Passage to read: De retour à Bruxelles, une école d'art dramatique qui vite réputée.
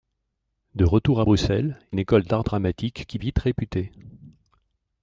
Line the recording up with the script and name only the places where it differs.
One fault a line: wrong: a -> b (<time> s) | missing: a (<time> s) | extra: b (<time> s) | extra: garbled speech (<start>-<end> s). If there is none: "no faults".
no faults